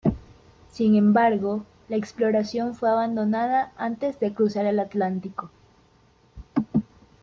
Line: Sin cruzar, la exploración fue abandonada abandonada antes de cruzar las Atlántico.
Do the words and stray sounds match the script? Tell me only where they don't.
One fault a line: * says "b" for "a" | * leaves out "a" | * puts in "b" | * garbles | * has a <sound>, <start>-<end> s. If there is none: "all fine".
* says "embargo" for "cruzar"
* leaves out "abandonada"
* says "el" for "las"